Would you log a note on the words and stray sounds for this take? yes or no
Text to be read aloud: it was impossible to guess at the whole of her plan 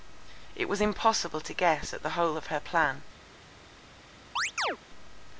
yes